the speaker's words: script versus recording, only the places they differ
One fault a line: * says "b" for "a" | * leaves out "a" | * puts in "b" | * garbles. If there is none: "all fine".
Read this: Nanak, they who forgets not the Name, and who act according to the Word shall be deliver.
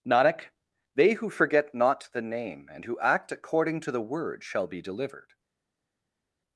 * says "forget" for "forgets"
* says "delivered" for "deliver"